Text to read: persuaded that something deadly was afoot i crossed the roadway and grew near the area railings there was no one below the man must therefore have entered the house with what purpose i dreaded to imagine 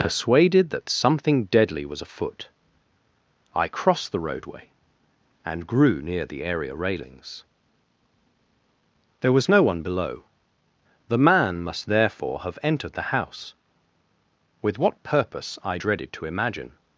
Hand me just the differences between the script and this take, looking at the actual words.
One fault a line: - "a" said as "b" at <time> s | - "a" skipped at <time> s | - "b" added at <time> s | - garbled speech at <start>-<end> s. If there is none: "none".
none